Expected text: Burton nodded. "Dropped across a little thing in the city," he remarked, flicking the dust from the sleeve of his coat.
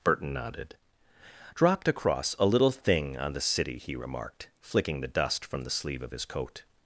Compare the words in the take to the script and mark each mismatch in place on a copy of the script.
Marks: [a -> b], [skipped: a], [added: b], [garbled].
Burton nodded. "Dropped across a little thing [in -> on] the city," he remarked, flicking the dust from the sleeve of his coat.